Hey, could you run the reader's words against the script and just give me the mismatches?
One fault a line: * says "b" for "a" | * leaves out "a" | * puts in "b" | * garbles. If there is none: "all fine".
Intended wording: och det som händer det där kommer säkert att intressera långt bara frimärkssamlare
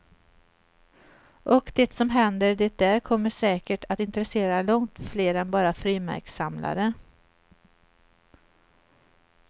* puts in "fler än"